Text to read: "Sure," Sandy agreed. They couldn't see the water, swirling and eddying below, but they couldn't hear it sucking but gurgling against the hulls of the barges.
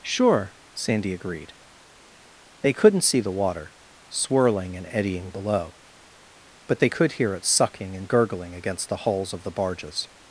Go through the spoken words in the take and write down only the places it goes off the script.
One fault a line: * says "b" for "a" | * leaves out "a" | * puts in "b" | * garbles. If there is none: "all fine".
* says "could" for "couldn't"
* says "and" for "but"